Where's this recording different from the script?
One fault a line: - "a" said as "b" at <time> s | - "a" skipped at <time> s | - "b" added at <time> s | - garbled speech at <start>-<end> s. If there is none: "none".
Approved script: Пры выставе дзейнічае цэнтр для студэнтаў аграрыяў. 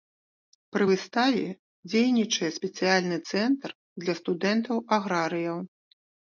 - "спецыяльны" added at 2.6 s